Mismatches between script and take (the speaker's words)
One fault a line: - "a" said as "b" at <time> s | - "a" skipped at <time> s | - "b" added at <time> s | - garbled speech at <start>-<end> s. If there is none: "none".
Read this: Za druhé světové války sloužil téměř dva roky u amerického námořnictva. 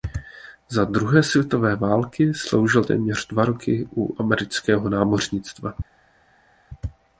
none